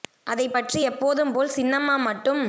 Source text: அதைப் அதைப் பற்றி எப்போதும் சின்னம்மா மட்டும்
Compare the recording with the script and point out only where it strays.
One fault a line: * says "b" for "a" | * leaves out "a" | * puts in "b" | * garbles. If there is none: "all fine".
* leaves out "அதைப்"
* puts in "போல்"